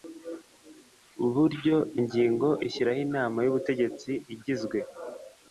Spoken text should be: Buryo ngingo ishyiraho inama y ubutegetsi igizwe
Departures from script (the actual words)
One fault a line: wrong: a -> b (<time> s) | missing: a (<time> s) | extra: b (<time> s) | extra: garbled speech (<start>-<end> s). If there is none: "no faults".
no faults